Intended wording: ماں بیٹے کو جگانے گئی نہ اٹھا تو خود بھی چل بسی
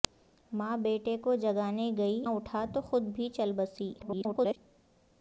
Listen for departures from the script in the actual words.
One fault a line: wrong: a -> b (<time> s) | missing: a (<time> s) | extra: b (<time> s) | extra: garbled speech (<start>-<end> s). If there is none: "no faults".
missing: نہ (2.2 s)
extra: garbled speech (4.0-4.6 s)